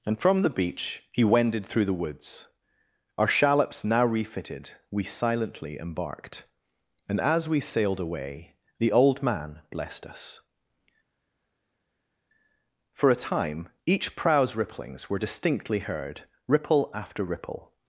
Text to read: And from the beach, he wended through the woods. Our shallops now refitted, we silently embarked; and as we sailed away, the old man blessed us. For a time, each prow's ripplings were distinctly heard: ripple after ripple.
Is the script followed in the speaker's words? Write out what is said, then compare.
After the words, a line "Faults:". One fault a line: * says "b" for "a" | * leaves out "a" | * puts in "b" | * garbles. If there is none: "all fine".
And from the beach, he wended through the woods. Our shallops now refitted, we silently embarked; and as we sailed away, the old man blessed us. For a time, each prow's ripplings were distinctly heard: ripple after ripple.
Faults:
all fine